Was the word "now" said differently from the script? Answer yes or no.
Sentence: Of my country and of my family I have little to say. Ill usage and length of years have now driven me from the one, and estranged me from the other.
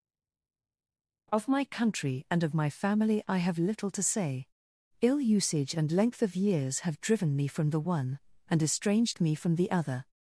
yes